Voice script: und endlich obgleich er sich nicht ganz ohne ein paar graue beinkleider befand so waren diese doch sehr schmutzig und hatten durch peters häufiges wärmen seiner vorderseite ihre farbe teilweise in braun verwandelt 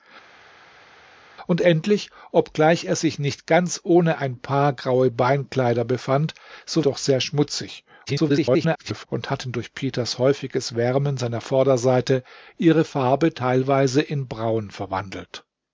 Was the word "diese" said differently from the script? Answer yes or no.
yes